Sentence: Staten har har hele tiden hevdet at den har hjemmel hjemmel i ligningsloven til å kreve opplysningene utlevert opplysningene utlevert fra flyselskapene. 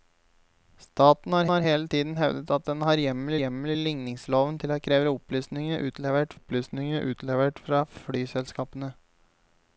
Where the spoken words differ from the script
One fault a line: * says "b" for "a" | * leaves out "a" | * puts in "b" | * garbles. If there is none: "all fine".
all fine